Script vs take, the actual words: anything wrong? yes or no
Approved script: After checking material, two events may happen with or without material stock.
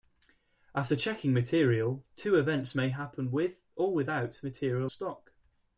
no